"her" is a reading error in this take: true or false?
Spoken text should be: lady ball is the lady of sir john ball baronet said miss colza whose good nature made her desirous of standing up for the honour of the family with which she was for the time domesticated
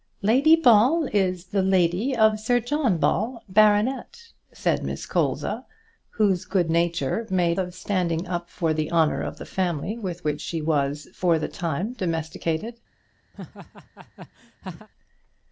true